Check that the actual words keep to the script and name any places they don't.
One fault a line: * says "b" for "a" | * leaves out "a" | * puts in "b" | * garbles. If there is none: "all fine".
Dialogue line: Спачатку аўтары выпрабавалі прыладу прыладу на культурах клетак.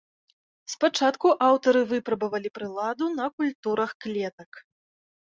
* leaves out "прыладу"